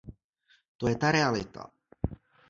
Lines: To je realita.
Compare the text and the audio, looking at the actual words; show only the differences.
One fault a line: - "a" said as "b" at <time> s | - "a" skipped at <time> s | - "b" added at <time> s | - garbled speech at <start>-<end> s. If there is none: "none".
- "ta" added at 1.0 s